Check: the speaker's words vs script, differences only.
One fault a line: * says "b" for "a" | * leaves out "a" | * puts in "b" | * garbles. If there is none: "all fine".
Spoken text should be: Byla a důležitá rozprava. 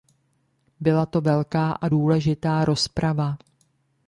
* puts in "to velká"